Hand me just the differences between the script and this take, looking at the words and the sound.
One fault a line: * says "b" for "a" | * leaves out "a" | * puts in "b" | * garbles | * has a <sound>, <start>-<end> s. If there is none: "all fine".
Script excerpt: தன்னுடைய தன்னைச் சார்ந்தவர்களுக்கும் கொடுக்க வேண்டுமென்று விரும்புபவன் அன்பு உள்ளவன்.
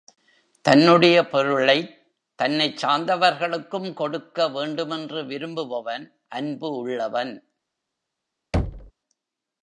* puts in "பொருளைத்"
* has a thud, 8.5-8.9 s